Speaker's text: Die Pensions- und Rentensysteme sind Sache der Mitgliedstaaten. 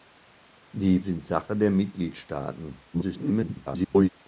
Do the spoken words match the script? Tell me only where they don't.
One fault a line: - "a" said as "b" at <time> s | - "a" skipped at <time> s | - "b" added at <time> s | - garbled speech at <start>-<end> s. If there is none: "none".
- "Pensions und Rentensysteme" skipped at 1.0 s
- garbled speech at 2.9-4.1 s